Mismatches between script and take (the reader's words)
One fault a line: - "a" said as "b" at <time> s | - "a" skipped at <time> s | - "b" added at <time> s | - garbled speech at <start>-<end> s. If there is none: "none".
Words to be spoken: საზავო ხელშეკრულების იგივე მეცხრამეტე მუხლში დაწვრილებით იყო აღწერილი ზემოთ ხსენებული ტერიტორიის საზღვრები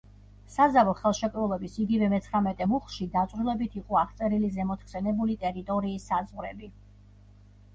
none